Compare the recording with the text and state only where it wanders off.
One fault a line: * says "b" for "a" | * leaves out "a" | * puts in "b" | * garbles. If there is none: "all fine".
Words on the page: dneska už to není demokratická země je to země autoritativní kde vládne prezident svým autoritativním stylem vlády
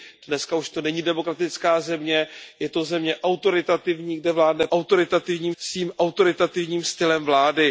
* says "autoritativním" for "prezident"